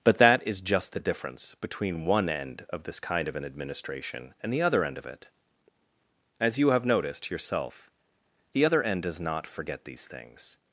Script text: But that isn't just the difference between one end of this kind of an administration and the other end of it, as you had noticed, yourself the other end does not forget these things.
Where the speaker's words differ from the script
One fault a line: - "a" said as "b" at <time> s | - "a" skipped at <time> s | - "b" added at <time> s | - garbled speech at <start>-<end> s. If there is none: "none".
- "isn't" said as "is" at 0.5 s
- "had" said as "have" at 6.7 s